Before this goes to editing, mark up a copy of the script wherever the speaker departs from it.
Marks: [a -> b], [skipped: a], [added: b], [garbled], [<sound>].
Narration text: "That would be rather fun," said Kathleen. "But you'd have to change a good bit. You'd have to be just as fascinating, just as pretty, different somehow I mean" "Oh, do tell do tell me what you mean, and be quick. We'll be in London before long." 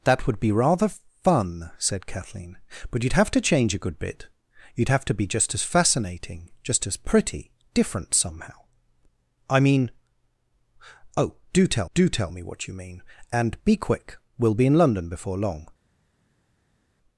"That would be rather fun," said Kathleen. "But you'd have to change a good bit. You'd have to be just as fascinating, just as pretty, different somehow I mean" "Oh, do tell do tell me what you mean, and be quick. We'll be in London before long."